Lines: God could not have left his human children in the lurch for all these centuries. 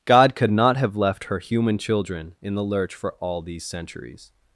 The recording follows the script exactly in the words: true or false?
false